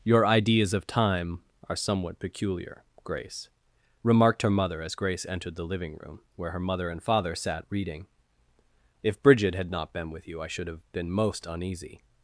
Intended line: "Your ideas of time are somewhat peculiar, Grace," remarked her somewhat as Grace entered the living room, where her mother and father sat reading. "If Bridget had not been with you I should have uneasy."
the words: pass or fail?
fail